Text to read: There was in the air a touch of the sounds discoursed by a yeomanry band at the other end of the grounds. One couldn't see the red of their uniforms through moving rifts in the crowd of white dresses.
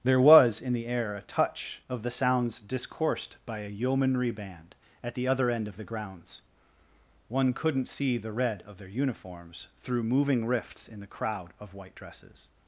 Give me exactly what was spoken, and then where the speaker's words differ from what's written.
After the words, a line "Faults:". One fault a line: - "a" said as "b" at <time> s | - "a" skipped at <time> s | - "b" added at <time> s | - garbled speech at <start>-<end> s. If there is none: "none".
There was in the air a touch of the sounds discoursed by a yeomanry band at the other end of the grounds. One couldn't see the red of their uniforms through moving rifts in the crowd of white dresses.
Faults:
none